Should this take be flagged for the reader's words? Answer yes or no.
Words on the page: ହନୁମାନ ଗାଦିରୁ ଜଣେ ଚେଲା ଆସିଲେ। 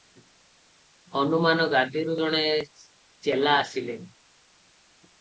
no